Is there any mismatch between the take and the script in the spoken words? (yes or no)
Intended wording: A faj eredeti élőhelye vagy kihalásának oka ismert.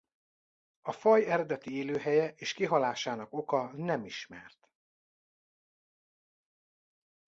yes